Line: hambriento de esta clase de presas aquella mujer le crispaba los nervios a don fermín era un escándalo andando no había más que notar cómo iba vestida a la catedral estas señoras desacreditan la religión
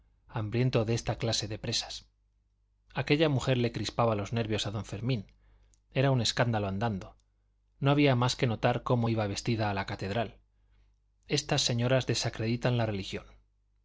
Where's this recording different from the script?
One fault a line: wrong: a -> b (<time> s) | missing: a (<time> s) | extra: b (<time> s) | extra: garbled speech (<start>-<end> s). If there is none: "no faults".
no faults